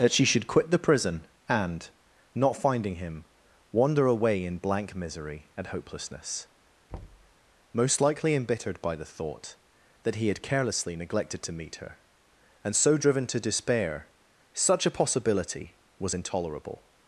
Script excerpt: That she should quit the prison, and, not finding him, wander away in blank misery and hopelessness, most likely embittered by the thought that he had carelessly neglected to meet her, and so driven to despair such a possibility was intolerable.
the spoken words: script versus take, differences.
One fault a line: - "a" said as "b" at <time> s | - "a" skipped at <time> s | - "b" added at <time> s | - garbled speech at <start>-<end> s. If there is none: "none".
none